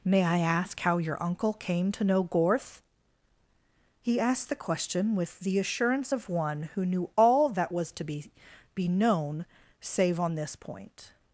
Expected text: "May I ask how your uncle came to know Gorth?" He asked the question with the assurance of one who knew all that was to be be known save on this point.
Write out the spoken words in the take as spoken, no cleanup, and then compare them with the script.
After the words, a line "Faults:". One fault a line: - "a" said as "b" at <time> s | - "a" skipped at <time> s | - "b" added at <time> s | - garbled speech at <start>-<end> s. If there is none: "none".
"May I ask how your uncle came to know Gorth?" He asked the question with the assurance of one who knew all that was to be be known save on this point.
Faults:
none